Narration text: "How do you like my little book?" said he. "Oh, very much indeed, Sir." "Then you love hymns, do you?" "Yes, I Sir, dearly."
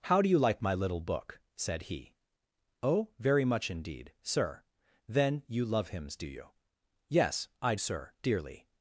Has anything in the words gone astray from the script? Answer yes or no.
no